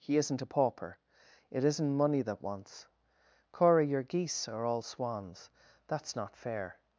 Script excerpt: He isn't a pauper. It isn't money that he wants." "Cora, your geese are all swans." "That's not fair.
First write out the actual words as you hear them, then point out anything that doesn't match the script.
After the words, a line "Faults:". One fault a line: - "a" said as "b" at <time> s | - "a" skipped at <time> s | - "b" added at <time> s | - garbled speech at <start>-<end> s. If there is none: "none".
He isn't a pauper. It isn't money that wants." "Cora, your geese are all swans." "That's not fair.
Faults:
- "he" skipped at 2.4 s